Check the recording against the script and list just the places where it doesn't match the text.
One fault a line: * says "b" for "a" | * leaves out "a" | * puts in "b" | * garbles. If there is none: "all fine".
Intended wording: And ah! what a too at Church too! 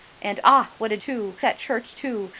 all fine